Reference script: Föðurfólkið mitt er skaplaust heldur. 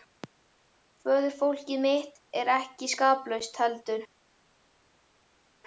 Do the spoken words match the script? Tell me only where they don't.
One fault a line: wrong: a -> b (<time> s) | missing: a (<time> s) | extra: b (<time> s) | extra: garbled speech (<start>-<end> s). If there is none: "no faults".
extra: ekki (2.6 s)